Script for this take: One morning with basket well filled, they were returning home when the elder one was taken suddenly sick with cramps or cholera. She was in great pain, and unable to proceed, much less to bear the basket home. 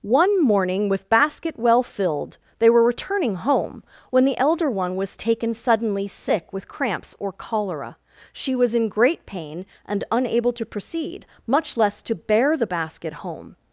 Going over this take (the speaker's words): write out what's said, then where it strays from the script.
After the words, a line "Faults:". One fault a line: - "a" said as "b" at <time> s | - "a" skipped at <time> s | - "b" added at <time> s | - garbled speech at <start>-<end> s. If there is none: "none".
One morning with basket well filled, they were returning home when the elder one was taken suddenly sick with cramps or cholera. She was in great pain, and unable to proceed, much less to bear the basket home.
Faults:
none